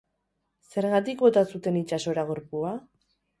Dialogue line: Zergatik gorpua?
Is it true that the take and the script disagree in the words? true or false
true